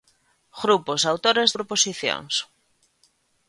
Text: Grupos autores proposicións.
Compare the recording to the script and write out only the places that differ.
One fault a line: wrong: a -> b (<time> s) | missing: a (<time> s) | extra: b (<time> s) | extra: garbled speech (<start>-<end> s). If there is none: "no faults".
no faults